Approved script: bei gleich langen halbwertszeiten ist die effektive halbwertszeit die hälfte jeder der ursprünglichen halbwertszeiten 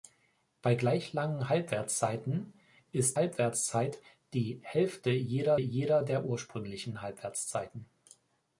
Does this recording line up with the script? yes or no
no